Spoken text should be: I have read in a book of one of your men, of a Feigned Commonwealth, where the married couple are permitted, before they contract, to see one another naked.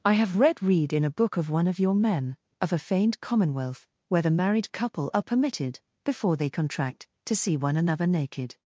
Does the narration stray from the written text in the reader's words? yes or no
yes